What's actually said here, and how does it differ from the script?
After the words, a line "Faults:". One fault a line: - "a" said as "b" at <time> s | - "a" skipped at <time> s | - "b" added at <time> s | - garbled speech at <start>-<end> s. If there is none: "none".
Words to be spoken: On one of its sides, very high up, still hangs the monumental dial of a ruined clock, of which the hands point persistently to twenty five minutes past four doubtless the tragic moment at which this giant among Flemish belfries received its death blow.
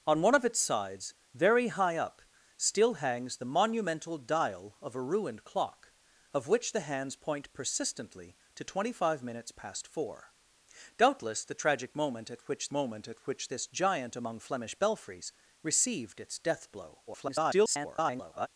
On one of its sides, very high up, still hangs the monumental dial of a ruined clock, of which the hands point persistently to twenty five minutes past four doubtless the tragic moment at which moment at which this giant among Flemish belfries received its death blow. [garbled]
Faults:
- "moment at which" added at 12.7 s
- garbled speech at 17.1-18.5 s